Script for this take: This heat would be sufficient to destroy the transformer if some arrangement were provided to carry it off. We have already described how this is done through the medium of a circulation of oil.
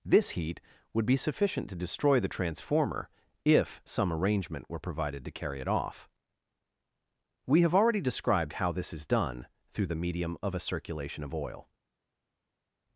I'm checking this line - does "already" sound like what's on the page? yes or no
yes